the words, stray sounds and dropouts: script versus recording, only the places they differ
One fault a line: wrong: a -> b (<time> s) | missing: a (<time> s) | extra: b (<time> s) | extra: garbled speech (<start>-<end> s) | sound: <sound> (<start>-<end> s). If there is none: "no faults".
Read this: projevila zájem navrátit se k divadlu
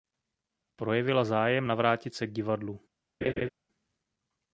sound: laugh (3.2-3.5 s)